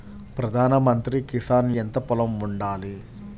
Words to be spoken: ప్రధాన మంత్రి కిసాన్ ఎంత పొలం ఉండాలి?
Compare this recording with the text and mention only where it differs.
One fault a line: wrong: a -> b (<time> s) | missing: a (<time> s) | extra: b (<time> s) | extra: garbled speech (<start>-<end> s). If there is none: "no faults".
no faults